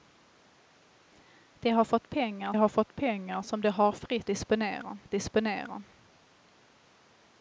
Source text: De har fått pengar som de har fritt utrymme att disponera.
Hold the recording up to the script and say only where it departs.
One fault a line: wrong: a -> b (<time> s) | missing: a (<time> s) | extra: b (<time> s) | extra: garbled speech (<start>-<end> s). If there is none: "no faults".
extra: har fått pengar (2.5 s)
wrong: utrymme -> disponera (4.3 s)